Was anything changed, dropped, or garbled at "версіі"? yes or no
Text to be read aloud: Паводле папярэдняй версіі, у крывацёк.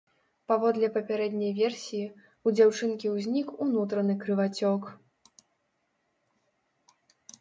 no